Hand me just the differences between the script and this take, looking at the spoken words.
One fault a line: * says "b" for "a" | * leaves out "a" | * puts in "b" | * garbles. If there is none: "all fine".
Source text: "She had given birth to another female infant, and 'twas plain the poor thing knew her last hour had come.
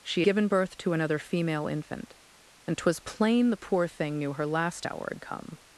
* leaves out "had"